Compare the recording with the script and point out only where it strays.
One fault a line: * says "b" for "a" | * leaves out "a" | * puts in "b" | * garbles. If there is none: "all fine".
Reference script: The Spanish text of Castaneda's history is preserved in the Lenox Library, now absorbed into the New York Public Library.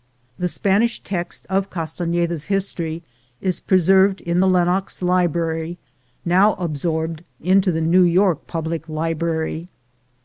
all fine